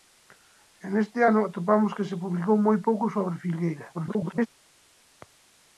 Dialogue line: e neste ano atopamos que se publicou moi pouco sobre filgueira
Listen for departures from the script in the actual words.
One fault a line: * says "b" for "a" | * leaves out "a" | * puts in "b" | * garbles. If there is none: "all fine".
* garbles